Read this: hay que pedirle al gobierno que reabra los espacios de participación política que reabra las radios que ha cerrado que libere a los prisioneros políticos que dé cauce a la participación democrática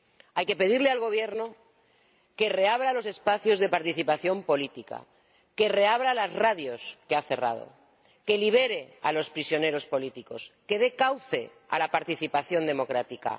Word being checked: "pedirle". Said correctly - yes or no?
yes